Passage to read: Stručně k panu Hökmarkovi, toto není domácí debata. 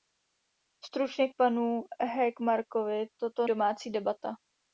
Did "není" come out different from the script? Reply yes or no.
yes